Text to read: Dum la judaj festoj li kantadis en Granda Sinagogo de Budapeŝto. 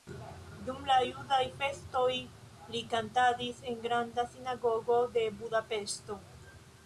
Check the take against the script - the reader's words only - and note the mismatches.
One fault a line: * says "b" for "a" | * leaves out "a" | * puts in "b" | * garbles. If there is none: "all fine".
all fine